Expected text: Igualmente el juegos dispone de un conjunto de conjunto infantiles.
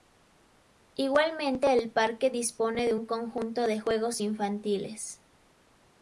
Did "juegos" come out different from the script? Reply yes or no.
yes